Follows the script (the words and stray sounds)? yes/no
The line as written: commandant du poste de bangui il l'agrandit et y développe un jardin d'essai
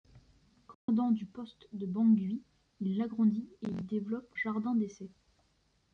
no